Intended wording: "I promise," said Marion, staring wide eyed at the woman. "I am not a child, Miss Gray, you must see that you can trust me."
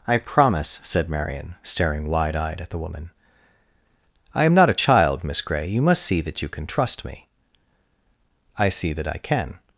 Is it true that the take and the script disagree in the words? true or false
true